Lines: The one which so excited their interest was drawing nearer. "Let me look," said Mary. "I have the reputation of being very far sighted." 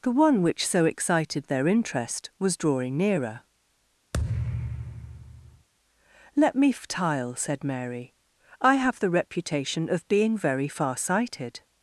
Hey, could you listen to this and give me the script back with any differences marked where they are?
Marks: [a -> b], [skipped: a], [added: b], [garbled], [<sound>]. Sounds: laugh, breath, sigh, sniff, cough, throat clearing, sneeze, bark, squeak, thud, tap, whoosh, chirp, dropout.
The one which so excited their interest was drawing nearer. [thud] "Let me [look," -> ftile] said Mary. "I have the reputation of being very far sighted."